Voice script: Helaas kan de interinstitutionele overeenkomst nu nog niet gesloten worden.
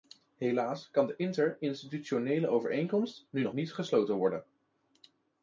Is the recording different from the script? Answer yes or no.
no